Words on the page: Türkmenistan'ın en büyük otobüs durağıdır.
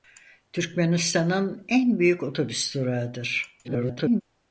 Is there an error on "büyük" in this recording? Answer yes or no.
no